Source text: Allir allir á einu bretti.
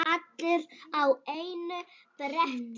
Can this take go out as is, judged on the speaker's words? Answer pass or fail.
fail